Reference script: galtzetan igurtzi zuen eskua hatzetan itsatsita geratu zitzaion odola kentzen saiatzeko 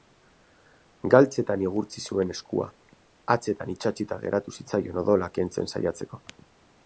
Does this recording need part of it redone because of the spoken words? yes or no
no